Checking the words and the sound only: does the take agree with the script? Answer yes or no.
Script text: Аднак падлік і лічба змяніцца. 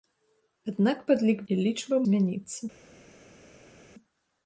yes